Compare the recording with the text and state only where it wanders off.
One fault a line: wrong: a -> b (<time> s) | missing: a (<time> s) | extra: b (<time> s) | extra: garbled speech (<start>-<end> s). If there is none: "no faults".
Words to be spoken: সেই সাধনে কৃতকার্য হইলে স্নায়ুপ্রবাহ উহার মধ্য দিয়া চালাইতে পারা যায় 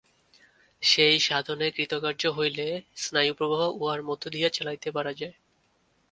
no faults